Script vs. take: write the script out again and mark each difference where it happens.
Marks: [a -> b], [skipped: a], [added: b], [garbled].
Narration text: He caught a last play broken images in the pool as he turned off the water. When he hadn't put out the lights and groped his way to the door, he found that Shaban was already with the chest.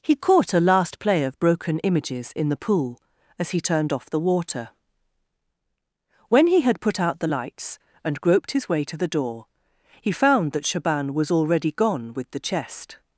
He caught a last play [added: of] broken images in the pool as he turned off the water. When he [hadn't -> had] put out the lights and groped his way to the door, he found that Shaban was already [added: gone] with the chest.